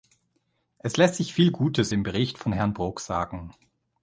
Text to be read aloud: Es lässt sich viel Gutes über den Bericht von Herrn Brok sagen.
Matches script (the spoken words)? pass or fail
fail